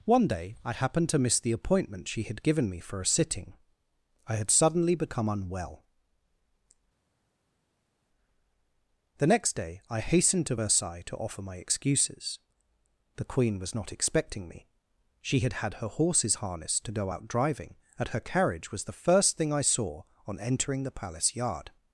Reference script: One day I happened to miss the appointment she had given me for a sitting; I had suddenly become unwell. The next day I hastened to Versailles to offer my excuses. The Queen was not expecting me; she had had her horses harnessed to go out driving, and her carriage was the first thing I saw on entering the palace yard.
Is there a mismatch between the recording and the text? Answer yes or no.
no